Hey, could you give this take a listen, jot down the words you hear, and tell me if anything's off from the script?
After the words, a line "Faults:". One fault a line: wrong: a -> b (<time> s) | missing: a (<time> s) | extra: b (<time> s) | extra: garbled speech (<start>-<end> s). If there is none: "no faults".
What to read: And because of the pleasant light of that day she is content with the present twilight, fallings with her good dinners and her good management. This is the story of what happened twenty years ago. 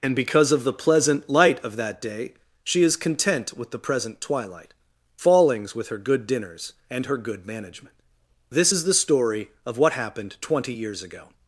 And because of the pleasant light of that day she is content with the present twilight, fallings with her good dinners and her good management. This is the story of what happened twenty years ago.
Faults:
no faults